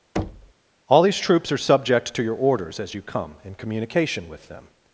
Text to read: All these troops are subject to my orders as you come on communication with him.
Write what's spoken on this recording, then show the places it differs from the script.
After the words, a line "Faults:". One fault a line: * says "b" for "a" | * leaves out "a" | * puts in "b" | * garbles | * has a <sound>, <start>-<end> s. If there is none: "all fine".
All these troops are subject to your orders as you come in communication with them.
Faults:
* has a thud, 0.2-0.5 s
* says "your" for "my"
* says "in" for "on"
* says "them" for "him"